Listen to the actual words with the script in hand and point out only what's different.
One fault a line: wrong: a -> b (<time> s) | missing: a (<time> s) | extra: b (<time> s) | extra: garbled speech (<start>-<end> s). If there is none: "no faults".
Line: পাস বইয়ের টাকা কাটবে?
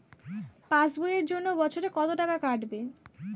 extra: জন্য বছরে কত (1.2 s)